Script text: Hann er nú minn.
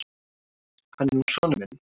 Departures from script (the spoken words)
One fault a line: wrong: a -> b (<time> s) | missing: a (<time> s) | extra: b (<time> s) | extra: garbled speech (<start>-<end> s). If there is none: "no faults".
extra: sonur (1.3 s)